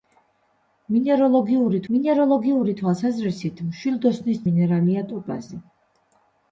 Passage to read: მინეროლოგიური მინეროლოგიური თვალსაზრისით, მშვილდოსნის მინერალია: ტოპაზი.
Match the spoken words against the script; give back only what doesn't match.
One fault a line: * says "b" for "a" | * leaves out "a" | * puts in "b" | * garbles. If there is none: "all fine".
all fine